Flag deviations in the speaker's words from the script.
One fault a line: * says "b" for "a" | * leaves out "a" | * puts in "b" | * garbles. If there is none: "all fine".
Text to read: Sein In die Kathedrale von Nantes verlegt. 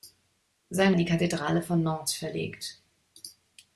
all fine